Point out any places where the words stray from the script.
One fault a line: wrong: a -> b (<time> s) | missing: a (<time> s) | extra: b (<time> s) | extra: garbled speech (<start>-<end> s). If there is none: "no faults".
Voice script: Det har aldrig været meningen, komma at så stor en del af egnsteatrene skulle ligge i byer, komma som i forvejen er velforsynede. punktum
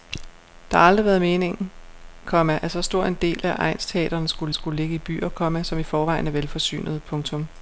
extra: skulle (4.5 s)